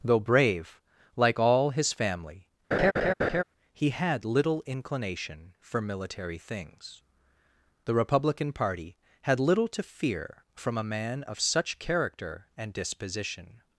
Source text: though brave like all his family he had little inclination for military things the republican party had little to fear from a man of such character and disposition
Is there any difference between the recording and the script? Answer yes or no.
no